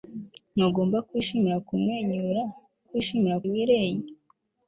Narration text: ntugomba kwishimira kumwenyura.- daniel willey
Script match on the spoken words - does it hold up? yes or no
no